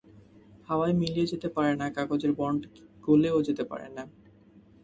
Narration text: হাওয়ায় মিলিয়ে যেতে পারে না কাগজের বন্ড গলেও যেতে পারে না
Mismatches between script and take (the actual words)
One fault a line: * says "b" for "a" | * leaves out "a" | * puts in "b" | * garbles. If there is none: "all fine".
all fine